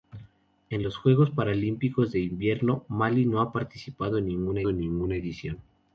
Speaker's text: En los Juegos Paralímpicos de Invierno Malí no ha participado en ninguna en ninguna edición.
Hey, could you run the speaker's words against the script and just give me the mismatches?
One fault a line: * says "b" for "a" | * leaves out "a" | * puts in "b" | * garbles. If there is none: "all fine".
all fine